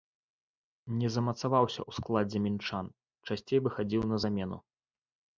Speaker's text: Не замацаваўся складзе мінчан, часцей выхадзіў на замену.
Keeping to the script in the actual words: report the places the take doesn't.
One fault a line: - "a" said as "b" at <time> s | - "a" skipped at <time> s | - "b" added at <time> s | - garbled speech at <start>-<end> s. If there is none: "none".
- "ў" added at 1.8 s